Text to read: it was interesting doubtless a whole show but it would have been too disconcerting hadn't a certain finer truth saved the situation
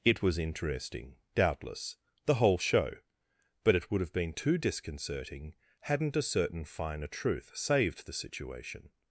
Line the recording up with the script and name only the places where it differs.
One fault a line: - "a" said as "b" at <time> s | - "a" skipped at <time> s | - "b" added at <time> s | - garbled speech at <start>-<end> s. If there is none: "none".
- "a" said as "the" at 2.2 s